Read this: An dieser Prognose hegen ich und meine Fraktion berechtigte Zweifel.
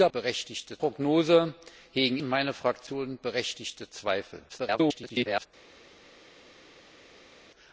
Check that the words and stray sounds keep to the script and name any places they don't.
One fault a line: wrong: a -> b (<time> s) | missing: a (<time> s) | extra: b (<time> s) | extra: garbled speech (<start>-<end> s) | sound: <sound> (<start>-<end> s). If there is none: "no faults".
wrong: dieser -> berechtigte (0.1 s)
missing: ich (2.2 s)
extra: garbled speech (4.5-5.5 s)